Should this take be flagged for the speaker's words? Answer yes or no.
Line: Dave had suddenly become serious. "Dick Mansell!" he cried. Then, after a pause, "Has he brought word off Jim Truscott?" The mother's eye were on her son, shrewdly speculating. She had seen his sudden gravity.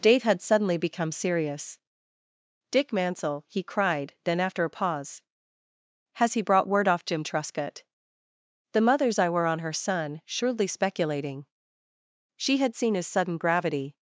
no